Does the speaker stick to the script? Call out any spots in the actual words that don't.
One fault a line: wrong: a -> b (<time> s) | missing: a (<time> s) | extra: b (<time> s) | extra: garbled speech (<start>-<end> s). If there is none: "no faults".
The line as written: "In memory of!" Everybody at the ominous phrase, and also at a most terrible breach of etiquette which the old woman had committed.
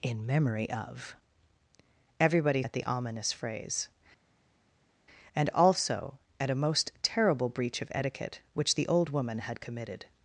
no faults